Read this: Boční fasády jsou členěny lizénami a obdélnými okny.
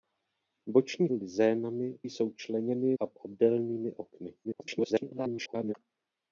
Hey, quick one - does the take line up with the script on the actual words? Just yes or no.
no